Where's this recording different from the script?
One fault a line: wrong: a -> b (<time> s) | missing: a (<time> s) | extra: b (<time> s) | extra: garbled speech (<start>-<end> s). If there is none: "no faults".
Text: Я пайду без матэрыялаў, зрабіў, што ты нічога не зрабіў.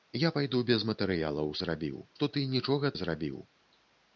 no faults